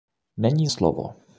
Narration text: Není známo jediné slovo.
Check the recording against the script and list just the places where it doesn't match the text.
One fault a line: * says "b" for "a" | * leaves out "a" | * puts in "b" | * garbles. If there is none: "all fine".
* leaves out "známo jediné"